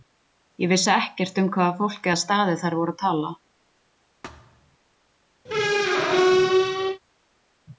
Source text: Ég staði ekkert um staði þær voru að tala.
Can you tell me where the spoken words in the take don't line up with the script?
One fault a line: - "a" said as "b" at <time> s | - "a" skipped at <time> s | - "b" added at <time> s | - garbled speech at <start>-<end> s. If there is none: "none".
- "staði" said as "vissi" at 0.7 s
- "hvaða fólk eða" added at 1.6 s